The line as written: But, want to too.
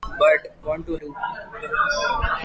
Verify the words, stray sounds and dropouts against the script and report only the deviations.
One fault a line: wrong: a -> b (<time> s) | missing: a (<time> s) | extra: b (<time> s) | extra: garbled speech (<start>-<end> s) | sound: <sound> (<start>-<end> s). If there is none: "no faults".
no faults